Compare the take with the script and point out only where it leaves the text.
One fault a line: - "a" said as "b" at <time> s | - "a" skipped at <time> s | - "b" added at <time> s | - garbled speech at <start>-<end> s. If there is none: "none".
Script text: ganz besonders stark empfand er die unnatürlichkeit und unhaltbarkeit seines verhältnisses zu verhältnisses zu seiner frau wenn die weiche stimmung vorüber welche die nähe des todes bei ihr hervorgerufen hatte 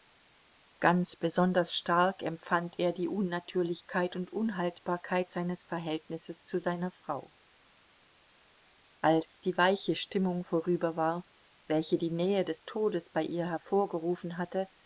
- "verhältnisses zu" skipped at 6.6 s
- "wenn" said as "als" at 9.0 s
- "war" added at 11.0 s